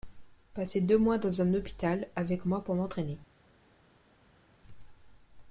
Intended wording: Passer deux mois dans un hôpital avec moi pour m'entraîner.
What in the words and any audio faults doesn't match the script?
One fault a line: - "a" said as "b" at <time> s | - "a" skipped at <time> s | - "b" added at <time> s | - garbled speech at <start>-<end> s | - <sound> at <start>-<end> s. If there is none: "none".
none